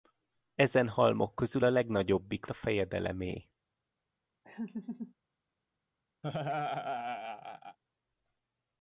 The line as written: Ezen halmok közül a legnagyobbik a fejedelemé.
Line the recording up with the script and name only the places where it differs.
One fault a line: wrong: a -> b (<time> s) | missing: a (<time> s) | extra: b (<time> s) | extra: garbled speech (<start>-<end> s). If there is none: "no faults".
no faults